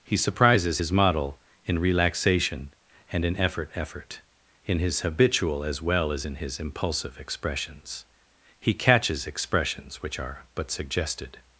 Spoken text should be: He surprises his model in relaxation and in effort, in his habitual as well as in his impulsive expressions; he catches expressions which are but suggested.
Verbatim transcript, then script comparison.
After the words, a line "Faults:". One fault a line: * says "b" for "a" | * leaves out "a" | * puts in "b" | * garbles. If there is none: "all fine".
He surprises his model in relaxation and in effort effort, in his habitual as well as in his impulsive expressions; he catches expressions which are but suggested.
Faults:
* puts in "effort"